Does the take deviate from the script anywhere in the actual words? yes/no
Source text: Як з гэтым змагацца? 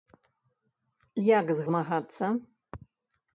yes